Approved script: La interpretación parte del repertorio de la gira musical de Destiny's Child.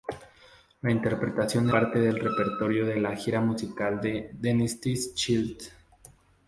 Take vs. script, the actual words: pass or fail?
pass